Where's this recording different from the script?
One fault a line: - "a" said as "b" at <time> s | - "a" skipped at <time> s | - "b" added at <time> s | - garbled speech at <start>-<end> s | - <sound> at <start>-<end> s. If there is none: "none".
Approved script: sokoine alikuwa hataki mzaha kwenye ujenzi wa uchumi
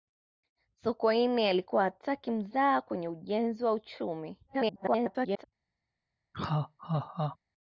- garbled speech at 4.5-5.4 s
- laugh at 6.3-7.4 s